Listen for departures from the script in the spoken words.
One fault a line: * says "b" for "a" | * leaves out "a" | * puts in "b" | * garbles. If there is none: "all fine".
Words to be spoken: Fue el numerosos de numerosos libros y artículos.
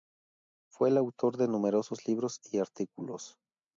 * says "autor" for "numerosos"